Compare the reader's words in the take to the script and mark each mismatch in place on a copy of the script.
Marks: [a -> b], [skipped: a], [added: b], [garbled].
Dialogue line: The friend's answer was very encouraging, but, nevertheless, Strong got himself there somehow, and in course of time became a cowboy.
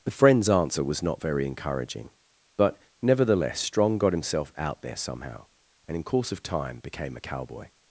The friend's answer was [added: not] very encouraging, but, nevertheless, Strong got himself [added: out] there somehow, and in course of time became a cowboy.